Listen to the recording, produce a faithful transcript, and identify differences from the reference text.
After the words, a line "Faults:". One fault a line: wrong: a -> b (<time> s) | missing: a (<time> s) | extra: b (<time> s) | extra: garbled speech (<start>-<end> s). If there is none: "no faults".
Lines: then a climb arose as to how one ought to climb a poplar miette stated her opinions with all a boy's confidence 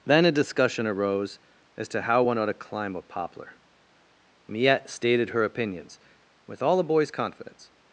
then a discussion arose as to how one ought to climb a poplar miette stated her opinions with all a boy's confidence
Faults:
wrong: climb -> discussion (0.3 s)